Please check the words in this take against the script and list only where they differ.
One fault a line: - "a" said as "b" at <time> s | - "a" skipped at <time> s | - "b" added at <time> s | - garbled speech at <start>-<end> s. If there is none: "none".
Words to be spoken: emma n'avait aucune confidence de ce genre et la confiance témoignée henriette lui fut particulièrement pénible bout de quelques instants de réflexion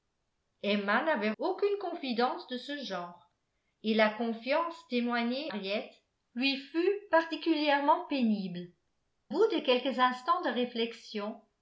none